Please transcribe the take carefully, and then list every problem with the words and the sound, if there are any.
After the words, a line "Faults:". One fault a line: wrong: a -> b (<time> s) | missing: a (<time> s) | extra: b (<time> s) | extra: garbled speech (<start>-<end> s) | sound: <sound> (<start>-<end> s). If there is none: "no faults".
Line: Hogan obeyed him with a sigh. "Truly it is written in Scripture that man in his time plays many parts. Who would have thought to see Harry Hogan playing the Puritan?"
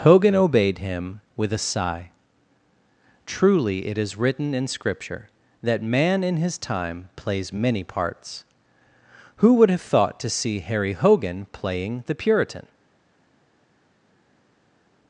Hogan obeyed him with a sigh. "Truly it is written in Scripture that man in his time plays many parts. Who would have thought to see Harry Hogan playing the Puritan?"
Faults:
no faults